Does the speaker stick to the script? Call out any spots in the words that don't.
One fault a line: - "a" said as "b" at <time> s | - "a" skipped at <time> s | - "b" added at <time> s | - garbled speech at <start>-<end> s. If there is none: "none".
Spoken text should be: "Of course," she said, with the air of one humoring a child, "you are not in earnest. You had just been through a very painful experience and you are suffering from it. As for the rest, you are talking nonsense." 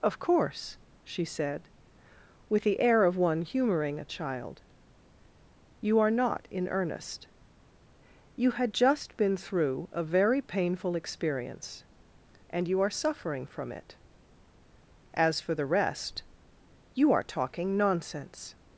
none